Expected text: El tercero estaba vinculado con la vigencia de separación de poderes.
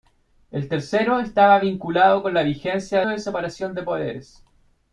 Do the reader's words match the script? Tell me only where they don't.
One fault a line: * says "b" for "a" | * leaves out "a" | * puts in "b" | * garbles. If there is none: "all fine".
all fine